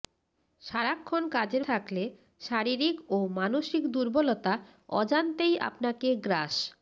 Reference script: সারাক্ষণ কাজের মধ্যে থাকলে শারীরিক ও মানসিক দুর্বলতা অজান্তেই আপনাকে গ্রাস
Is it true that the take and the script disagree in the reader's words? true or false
true